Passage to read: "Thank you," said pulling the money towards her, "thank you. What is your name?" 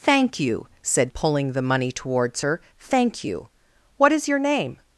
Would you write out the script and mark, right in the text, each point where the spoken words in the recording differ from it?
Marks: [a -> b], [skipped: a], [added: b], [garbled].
"Thank you," said pulling the money towards her, "thank you. What is your name?"